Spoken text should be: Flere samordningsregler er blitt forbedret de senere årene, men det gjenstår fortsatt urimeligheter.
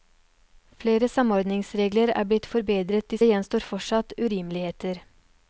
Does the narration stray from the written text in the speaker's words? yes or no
yes